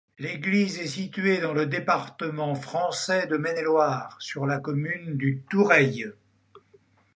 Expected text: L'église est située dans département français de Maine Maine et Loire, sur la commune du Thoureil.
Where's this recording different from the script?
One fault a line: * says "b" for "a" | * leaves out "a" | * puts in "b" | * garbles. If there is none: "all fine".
* puts in "le"
* leaves out "Maine"